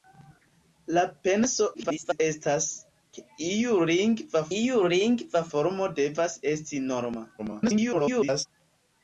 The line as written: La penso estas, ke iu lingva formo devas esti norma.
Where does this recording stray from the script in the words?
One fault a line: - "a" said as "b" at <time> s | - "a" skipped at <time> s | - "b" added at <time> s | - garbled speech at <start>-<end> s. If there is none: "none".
- garbled speech at 1.7-2.2 s
- "iu lingva" added at 4.6 s
- garbled speech at 7.4-8.5 s